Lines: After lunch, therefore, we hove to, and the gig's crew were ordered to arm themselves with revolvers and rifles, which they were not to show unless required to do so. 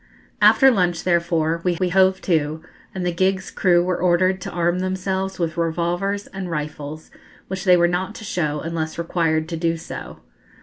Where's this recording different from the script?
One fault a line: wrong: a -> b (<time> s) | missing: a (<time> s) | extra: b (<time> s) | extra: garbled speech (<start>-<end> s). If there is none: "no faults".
extra: we (1.8 s)